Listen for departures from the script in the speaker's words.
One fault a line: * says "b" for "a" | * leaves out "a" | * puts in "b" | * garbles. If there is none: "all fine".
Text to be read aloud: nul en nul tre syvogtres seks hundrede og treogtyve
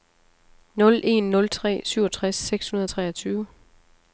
all fine